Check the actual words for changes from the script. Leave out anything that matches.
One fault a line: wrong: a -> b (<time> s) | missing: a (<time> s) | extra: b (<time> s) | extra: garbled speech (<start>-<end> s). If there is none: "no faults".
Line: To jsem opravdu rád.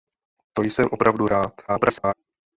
extra: garbled speech (1.7-2.1 s)